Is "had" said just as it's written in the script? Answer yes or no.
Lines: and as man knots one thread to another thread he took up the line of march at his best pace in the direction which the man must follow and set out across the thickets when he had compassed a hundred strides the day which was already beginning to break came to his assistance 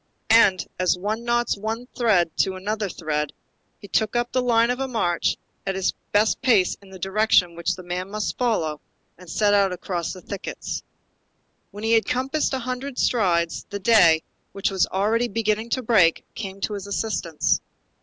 yes